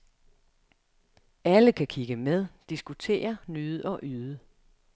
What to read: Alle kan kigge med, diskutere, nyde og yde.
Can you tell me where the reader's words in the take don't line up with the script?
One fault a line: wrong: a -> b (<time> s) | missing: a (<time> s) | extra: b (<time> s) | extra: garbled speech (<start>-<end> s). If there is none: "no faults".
no faults